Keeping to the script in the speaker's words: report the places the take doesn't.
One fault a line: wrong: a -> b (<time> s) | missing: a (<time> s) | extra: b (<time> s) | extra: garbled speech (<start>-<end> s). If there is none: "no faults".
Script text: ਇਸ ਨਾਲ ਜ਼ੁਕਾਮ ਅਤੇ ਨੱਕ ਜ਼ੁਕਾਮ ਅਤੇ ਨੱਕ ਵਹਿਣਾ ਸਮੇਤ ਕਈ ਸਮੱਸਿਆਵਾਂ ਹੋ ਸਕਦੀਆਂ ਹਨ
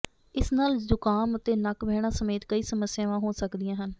missing: ਜ਼ੁਕਾਮ ਅਤੇ ਨੱਕ (1.8 s)